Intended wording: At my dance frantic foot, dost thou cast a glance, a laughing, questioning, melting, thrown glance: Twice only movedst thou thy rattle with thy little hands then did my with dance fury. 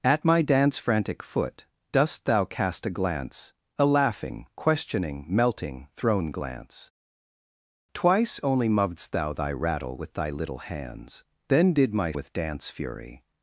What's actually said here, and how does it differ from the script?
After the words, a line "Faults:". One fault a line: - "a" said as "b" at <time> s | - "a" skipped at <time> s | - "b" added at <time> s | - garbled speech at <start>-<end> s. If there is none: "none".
At my dance frantic foot, dost thou cast a glance, a laughing, questioning, melting, thrown glance: Twice only movedst thou thy rattle with thy little hands then did my with dance fury.
Faults:
none